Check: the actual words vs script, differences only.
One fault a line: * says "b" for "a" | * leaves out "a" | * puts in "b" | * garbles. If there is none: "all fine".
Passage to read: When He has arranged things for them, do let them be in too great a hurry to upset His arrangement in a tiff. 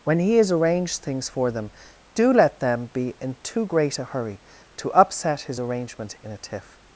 all fine